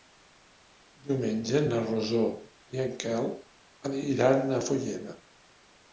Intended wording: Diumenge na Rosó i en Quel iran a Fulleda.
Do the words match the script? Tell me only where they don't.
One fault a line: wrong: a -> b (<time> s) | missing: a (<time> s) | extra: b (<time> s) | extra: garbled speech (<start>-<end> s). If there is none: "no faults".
no faults